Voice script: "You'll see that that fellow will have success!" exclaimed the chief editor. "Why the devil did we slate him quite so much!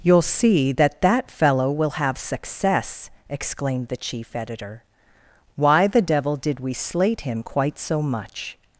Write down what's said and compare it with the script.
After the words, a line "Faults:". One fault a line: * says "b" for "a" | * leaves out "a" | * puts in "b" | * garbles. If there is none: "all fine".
"You'll see that that fellow will have success!" exclaimed the chief editor. "Why the devil did we slate him quite so much!
Faults:
all fine